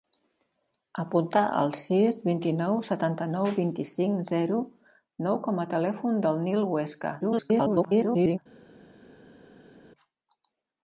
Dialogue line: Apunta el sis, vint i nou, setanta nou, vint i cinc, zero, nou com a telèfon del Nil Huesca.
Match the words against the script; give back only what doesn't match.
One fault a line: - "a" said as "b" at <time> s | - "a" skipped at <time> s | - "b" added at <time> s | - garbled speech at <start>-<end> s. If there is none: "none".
- garbled speech at 7.2-8.4 s